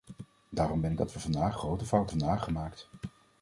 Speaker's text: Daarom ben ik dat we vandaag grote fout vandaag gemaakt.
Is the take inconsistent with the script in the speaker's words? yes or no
no